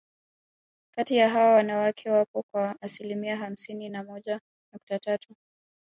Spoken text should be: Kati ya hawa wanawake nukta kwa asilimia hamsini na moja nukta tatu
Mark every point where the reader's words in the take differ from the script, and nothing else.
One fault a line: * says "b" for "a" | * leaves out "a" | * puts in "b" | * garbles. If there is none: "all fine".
* says "wapo" for "nukta"